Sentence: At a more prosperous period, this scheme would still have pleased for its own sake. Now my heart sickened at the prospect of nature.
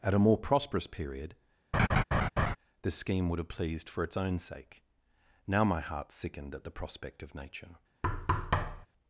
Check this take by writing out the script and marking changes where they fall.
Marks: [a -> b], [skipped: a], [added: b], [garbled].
At a more prosperous period, this scheme would [skipped: still] have pleased for its own sake. Now my heart sickened at the prospect of nature.